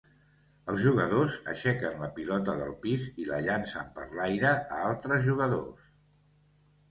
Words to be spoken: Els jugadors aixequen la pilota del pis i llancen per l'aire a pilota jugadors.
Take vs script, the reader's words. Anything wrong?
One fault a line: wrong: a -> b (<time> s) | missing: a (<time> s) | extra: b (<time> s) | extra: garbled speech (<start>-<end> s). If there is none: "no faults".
extra: la (3.3 s)
wrong: pilota -> altres (4.9 s)